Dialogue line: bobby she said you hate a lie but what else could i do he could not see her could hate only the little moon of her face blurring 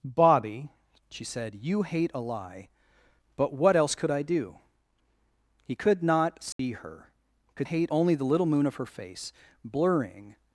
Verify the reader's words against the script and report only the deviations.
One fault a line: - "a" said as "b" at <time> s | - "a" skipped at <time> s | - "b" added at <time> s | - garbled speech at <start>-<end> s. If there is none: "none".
none